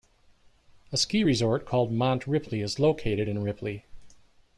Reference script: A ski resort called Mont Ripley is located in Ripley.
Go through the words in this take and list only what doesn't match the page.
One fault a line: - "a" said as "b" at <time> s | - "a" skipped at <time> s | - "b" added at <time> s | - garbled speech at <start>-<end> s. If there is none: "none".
none